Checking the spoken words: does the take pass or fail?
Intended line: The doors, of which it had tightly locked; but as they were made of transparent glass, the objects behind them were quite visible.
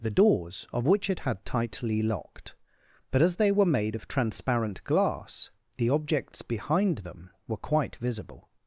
pass